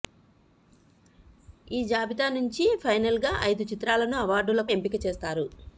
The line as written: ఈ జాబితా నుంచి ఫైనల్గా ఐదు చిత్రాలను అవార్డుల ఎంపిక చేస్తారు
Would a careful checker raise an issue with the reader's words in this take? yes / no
no